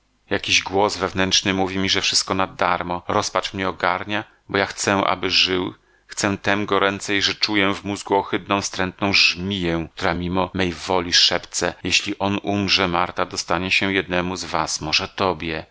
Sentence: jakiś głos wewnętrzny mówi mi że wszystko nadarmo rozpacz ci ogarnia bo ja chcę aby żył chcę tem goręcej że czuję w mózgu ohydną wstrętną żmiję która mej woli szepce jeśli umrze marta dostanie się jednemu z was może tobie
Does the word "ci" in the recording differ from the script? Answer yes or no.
yes